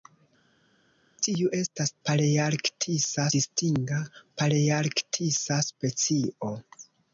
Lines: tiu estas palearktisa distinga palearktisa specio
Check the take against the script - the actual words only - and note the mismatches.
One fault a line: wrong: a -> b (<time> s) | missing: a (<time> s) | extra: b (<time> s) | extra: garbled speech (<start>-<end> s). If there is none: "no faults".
no faults